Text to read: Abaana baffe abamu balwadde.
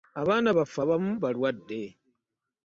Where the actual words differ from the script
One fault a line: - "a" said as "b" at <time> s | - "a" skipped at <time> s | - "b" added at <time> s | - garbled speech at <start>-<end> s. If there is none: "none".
none